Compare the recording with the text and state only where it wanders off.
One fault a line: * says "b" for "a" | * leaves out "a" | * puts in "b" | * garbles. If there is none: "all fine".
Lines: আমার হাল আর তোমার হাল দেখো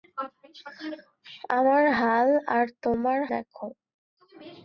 * leaves out "হাল"